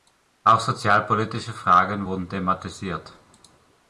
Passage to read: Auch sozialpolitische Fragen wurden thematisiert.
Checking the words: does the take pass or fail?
pass